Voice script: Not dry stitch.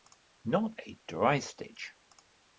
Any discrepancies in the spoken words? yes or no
yes